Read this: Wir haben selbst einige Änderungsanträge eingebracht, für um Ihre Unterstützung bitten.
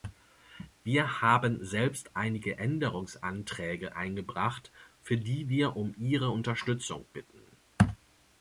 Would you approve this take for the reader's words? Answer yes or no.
no